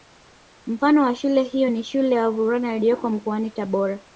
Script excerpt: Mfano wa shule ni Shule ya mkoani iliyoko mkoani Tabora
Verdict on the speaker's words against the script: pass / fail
fail